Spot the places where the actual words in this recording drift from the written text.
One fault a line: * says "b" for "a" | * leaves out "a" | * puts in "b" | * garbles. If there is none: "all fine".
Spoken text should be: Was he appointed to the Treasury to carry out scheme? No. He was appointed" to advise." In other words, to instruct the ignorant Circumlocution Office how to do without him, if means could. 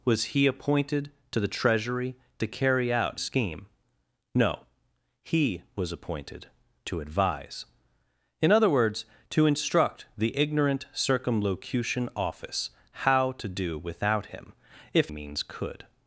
all fine